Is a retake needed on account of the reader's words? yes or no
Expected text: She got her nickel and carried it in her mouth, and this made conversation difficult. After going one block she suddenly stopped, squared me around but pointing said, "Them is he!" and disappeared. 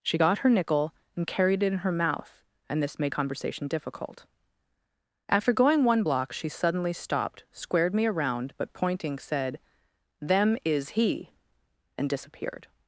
no